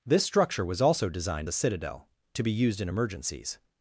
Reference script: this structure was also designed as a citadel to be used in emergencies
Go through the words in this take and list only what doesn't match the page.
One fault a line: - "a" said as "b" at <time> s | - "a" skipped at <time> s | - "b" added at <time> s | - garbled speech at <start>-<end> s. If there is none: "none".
- "as" skipped at 1.5 s